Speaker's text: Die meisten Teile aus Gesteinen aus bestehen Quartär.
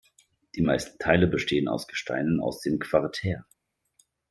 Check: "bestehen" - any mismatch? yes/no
yes